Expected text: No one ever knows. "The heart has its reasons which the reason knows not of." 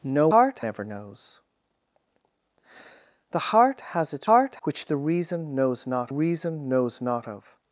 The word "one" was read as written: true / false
false